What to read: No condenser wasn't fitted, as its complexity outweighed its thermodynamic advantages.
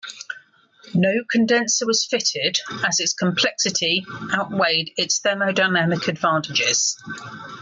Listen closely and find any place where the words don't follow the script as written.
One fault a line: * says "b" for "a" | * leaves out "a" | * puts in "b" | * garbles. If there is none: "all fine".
* says "was" for "wasn't"